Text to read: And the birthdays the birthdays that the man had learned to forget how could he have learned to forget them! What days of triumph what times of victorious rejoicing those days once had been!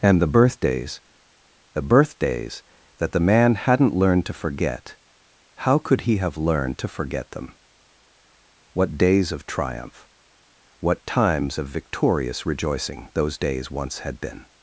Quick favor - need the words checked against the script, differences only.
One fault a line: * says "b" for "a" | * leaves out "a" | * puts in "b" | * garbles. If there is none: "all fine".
* says "hadn't" for "had"